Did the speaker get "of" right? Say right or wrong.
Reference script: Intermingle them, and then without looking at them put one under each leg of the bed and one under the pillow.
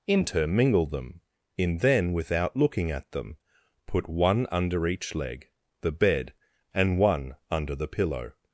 wrong